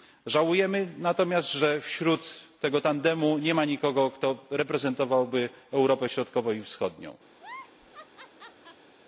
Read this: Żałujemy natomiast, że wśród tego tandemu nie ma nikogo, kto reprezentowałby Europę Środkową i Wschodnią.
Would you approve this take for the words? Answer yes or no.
yes